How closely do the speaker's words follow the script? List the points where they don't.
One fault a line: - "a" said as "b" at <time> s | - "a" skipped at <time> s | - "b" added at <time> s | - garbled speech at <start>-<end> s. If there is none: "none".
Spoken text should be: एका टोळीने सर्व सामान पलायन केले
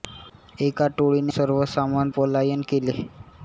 none